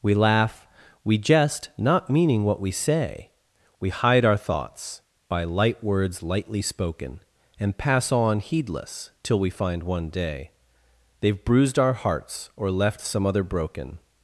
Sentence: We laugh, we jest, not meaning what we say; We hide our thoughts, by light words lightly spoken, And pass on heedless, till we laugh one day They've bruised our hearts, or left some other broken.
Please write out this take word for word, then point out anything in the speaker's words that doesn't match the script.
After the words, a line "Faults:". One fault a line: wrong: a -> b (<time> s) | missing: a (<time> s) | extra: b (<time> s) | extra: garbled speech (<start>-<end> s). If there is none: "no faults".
We laugh, we jest, not meaning what we say; We hide our thoughts, by light words lightly spoken, And pass on heedless, till we find one day They've bruised our hearts, or left some other broken.
Faults:
wrong: laugh -> find (9.5 s)